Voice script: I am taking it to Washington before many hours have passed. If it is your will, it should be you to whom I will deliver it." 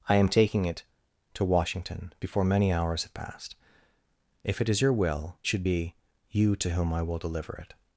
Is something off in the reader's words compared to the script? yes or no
yes